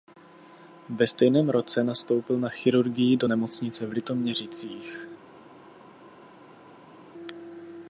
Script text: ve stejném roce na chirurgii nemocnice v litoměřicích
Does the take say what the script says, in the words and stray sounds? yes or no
no